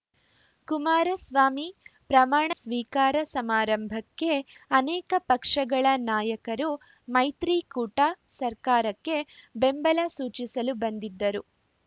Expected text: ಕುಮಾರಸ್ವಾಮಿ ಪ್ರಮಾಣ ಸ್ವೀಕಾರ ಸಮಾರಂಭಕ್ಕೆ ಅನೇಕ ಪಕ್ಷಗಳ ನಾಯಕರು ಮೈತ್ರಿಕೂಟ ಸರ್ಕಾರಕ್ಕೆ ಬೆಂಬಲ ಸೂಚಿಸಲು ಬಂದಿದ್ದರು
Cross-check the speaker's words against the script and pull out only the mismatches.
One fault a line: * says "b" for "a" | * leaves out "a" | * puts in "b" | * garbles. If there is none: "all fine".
all fine